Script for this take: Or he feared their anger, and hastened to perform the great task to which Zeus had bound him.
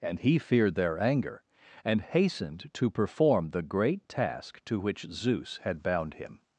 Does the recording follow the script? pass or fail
fail